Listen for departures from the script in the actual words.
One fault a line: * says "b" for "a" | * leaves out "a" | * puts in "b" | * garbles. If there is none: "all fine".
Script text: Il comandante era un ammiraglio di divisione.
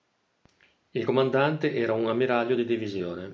all fine